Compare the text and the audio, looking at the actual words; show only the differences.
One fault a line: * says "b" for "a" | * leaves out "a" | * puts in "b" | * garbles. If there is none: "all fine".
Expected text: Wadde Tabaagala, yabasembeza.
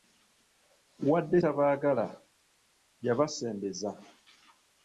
all fine